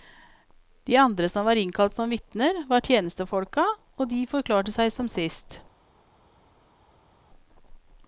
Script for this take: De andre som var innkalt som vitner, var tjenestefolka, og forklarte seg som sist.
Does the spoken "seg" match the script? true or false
true